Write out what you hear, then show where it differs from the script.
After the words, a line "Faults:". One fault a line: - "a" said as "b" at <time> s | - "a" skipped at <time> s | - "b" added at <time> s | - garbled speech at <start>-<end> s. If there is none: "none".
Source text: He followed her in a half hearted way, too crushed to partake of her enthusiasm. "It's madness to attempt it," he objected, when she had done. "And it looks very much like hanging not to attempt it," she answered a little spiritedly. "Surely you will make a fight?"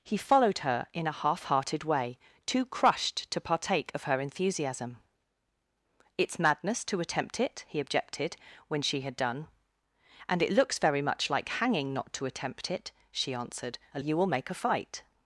He followed her in a half hearted way, too crushed to partake of her enthusiasm. "It's madness to attempt it," he objected, when she had done. "And it looks very much like hanging not to attempt it," she answered a you will make a fight?"
Faults:
- "little spiritedly Surely" skipped at 14.0 s